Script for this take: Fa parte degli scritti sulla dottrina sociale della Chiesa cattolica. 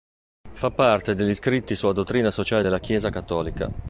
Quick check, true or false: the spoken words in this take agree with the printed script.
true